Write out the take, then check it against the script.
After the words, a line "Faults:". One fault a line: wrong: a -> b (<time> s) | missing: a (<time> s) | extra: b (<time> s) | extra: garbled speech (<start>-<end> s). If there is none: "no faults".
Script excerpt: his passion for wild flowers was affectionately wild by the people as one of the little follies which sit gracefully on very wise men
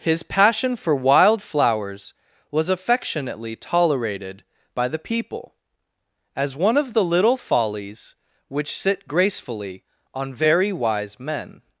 his passion for wild flowers was affectionately tolerated by the people as one of the little follies which sit gracefully on very wise men
Faults:
wrong: wild -> tolerated (3.5 s)